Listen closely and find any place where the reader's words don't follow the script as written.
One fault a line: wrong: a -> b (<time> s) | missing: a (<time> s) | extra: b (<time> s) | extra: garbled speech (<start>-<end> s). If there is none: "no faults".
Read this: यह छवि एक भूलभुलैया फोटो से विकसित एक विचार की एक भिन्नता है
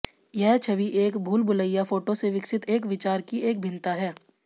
no faults